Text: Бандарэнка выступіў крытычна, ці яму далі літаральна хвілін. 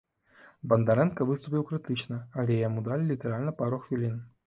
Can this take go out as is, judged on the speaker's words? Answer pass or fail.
fail